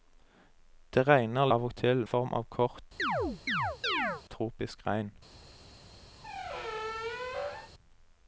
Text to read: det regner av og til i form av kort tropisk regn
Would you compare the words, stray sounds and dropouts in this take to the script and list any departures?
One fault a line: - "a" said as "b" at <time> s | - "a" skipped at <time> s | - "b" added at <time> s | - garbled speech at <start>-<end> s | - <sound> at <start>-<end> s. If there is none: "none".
- chirp at 3.0-4.2 s
- squeak at 6.2-7.7 s